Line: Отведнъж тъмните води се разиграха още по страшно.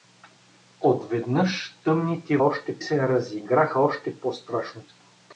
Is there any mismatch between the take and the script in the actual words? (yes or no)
yes